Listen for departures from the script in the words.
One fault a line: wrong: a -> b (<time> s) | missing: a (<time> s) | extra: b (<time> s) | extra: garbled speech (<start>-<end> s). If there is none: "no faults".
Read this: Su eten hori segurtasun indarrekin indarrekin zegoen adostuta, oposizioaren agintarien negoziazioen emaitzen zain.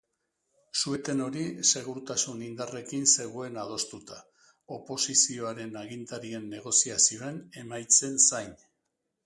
missing: indarrekin (3.1 s)